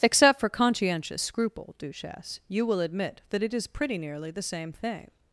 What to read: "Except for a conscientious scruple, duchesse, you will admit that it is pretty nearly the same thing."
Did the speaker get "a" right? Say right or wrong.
wrong